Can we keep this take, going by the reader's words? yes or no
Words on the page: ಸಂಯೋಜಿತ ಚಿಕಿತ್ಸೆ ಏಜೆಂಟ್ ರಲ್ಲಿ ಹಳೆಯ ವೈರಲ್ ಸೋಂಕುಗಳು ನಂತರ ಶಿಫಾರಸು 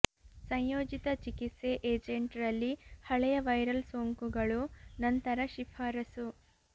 yes